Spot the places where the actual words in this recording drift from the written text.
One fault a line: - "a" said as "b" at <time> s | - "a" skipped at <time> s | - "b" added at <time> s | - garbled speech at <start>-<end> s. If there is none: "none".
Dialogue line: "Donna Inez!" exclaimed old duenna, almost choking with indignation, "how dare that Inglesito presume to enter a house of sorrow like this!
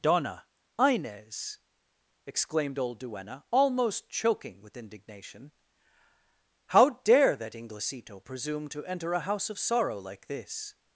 none